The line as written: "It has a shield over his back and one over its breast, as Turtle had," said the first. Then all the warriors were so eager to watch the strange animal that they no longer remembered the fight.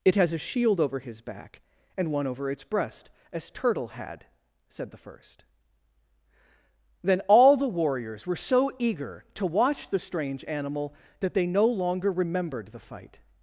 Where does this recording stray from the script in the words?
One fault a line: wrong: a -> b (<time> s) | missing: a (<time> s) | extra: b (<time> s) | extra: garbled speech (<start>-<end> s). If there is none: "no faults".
no faults